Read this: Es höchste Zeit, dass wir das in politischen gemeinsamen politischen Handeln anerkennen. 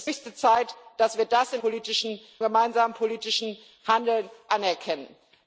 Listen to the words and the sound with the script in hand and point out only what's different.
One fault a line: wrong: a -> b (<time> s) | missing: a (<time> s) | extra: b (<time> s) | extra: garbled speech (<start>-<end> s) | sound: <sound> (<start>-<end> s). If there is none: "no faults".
no faults